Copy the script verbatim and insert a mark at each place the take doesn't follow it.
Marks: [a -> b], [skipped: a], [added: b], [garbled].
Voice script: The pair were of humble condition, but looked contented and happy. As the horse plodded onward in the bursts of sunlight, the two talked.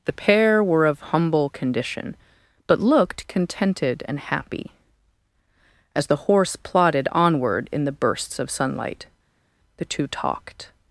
The pair were of humble condition, but looked contented and happy. As the horse plodded onward in the bursts of sunlight, the two talked.